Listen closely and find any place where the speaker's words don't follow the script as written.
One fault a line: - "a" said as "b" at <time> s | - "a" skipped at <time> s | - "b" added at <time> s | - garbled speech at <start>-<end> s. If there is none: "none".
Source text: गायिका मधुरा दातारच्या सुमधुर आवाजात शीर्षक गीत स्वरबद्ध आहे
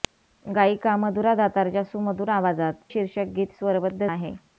none